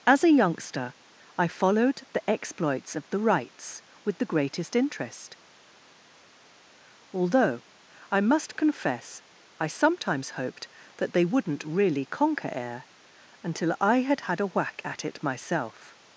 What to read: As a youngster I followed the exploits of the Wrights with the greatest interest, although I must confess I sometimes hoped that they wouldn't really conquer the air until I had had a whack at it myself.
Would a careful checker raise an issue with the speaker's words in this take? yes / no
yes